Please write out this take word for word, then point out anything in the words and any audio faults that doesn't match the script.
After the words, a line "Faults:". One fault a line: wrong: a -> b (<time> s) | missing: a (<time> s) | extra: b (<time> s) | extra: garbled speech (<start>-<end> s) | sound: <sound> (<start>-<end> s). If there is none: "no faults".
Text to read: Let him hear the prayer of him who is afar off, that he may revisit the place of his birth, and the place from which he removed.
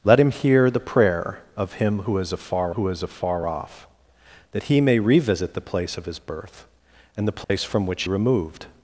Let him hear the prayer of him who is afar who is afar off, that he may revisit the place of his birth, and the place from which removed.
Faults:
extra: who is afar (2.7 s)
sound: dropout (7.4-7.5 s)
missing: he (8.0 s)